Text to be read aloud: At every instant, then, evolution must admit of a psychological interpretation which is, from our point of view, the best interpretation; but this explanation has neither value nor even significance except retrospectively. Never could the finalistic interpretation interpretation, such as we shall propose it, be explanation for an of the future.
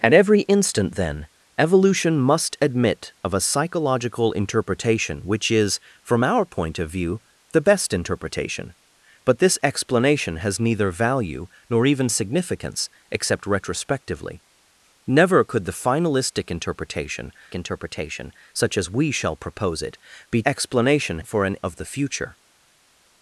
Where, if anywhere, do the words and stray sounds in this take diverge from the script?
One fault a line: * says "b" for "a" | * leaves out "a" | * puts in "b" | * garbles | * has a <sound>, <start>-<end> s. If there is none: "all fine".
all fine